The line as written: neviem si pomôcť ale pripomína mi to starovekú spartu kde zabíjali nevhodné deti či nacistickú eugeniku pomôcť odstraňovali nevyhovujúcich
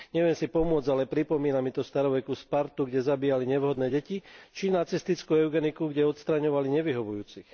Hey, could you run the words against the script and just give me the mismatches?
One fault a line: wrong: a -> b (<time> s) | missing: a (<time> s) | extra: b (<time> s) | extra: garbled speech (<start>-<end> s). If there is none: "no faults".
wrong: pomôcť -> kde (5.9 s)